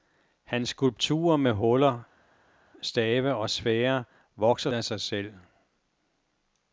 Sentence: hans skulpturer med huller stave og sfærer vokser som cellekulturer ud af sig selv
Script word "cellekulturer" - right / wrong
wrong